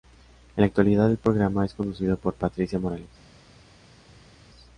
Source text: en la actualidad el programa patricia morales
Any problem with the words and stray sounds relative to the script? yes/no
yes